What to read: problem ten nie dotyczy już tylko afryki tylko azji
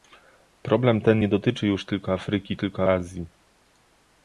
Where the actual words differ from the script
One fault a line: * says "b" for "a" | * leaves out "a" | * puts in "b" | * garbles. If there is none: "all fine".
all fine